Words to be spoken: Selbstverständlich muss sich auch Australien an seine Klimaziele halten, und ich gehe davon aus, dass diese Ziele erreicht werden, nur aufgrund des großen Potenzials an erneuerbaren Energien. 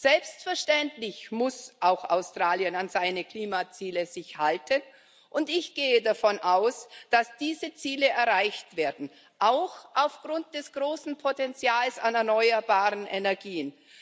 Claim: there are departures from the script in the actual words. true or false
true